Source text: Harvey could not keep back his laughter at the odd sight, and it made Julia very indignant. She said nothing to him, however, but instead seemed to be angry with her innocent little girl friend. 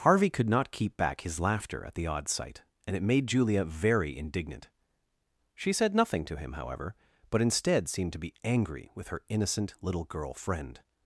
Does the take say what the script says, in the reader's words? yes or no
yes